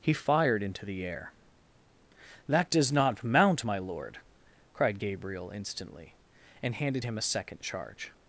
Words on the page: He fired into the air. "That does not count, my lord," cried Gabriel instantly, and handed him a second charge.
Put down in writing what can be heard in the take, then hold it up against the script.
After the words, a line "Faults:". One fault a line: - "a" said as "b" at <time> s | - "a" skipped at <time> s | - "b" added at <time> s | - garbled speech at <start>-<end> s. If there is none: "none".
He fired into the air. "That does not mount, my lord," cried Gabriel instantly, and handed him a second charge.
Faults:
- "count" said as "mount" at 3.2 s